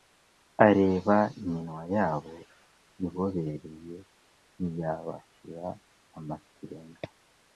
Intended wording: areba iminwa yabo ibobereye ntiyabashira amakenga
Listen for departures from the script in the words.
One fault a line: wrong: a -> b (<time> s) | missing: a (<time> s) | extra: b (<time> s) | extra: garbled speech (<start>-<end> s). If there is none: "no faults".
no faults